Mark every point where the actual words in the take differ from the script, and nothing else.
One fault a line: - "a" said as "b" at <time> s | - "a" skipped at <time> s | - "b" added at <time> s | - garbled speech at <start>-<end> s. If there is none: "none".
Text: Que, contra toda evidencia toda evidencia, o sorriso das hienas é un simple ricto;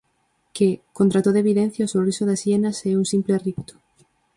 - "toda evidencia" skipped at 1.9 s